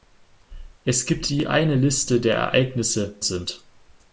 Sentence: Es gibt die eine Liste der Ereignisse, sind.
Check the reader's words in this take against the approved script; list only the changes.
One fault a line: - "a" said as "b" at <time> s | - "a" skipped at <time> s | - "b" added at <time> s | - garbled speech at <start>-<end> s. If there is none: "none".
none